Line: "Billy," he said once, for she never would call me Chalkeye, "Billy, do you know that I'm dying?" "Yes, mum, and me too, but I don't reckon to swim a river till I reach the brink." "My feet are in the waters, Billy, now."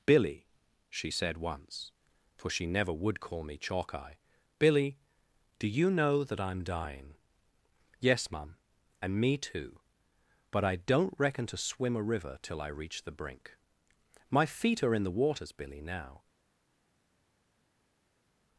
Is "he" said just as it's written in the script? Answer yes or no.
no